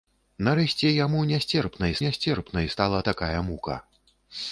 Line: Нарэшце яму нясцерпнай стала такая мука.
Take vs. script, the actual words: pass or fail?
fail